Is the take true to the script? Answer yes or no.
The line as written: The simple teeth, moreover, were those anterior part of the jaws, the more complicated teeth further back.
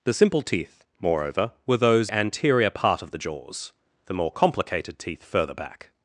yes